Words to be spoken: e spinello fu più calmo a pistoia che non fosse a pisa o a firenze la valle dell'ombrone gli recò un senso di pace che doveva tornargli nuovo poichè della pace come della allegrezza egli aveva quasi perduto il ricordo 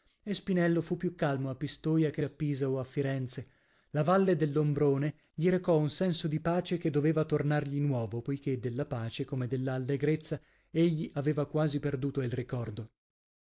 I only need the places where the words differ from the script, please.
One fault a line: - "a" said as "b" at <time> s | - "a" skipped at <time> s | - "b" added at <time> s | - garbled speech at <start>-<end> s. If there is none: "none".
- "non fosse" skipped at 2.2 s